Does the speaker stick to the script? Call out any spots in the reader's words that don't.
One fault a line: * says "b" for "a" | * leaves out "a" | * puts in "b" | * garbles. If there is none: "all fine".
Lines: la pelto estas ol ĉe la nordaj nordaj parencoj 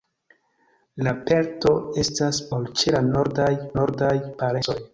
all fine